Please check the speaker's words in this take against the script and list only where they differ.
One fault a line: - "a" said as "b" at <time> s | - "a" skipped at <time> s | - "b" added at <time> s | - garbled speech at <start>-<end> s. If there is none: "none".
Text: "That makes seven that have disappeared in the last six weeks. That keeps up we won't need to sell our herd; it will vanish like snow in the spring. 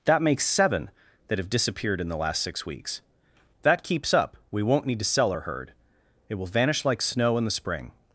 none